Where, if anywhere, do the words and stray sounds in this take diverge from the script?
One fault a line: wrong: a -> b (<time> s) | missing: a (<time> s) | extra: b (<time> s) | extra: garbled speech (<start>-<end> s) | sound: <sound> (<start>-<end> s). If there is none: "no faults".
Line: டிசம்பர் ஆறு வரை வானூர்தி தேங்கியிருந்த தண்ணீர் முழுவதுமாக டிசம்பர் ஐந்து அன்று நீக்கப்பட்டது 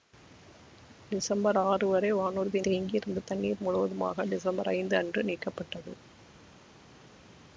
no faults